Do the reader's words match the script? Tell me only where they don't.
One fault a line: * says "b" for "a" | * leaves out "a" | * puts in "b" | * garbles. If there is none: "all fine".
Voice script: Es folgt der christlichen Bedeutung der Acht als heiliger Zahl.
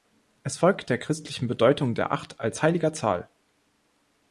all fine